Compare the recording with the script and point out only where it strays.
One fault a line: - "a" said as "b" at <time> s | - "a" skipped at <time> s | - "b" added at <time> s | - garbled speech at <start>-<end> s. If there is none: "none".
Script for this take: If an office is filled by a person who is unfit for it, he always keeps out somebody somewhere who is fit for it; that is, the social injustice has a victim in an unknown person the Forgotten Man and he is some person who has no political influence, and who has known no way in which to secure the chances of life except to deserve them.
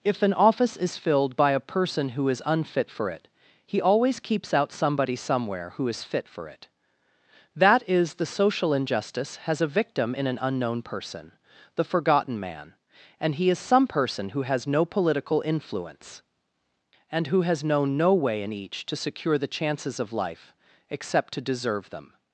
- "which" said as "each" at 18.5 s